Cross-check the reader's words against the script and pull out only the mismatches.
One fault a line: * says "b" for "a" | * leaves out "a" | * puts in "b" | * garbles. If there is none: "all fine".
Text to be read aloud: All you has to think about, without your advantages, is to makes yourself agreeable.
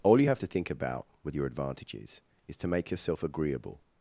* says "have" for "has"
* says "with" for "without"
* says "make" for "makes"